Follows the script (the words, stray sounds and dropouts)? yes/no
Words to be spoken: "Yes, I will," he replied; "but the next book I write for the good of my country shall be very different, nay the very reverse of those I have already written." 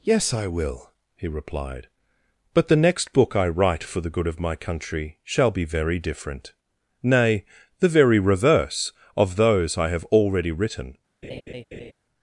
no